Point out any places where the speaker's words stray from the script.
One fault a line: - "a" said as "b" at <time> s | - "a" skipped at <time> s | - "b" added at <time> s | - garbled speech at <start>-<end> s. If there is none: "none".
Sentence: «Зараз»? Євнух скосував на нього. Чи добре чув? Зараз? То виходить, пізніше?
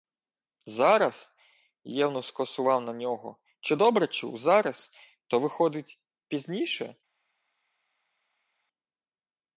none